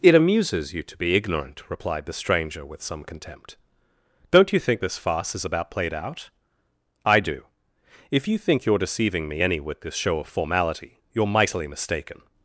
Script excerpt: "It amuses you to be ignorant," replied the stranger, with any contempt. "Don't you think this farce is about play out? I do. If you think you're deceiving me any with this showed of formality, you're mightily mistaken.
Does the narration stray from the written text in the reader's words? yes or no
yes